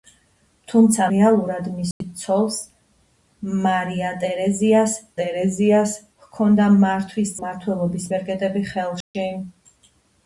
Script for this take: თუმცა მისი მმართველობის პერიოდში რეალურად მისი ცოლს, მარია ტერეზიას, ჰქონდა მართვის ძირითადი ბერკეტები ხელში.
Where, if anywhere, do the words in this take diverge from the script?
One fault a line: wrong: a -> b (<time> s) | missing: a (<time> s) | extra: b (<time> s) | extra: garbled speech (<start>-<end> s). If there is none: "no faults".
missing: მისი მმართველობის პერიოდში (1.1 s)
extra: ტერეზიას (5.2 s)
wrong: ძირითადი -> მმართველობის (7.4 s)